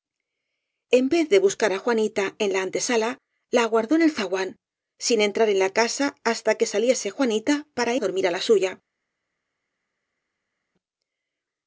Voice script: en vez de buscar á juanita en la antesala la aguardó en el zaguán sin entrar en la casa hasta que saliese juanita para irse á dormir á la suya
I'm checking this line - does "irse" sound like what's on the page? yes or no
no